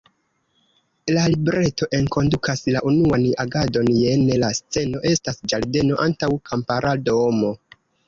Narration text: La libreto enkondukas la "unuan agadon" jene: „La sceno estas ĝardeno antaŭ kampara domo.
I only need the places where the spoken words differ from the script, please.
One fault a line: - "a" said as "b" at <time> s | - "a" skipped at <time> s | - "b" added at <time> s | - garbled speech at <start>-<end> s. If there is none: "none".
none